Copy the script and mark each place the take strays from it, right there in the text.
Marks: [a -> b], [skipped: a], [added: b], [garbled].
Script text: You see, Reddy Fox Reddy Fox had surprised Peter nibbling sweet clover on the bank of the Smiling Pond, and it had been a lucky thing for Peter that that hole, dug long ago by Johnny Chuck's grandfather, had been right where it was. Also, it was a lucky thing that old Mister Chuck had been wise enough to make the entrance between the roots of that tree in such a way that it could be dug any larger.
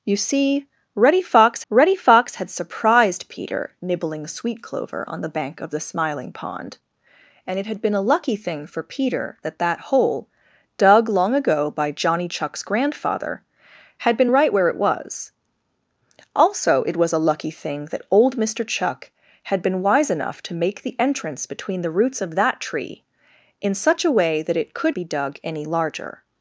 You see, Reddy Fox Reddy Fox had surprised Peter nibbling sweet clover on the bank of the Smiling Pond, and it had been a lucky thing for Peter that that hole, dug long ago by Johnny Chuck's grandfather, had been right where it was. Also, it was a lucky thing that old Mister Chuck had been wise enough to make the entrance between the roots of that tree in such a way that it could be dug any larger.